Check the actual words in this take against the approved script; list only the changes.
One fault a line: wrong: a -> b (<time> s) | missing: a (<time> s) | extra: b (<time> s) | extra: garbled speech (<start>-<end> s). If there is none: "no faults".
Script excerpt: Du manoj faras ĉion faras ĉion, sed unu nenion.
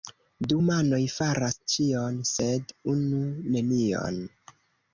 missing: faras ĉion (2.2 s)